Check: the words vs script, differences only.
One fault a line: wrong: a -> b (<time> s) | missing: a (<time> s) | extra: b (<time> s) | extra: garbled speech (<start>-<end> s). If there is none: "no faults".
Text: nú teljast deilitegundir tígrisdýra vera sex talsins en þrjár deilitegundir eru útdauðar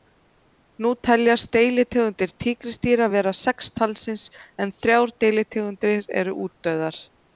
no faults